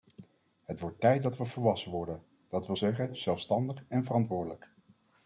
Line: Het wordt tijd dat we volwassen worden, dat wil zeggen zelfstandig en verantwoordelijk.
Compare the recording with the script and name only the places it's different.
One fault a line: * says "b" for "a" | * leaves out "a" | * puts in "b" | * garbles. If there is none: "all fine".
all fine